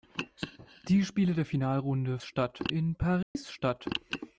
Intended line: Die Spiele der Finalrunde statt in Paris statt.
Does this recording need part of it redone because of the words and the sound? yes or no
yes